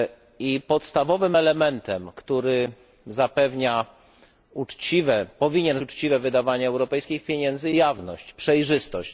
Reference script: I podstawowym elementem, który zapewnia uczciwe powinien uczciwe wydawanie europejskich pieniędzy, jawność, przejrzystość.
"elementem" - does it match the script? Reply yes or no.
yes